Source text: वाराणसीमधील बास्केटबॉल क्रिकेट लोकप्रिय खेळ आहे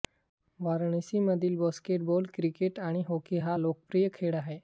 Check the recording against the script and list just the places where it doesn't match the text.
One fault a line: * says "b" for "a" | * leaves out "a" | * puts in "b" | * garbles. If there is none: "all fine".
* puts in "आणि हॉकी हा"